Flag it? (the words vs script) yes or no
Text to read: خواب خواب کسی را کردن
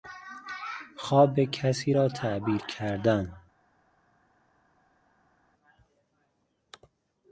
yes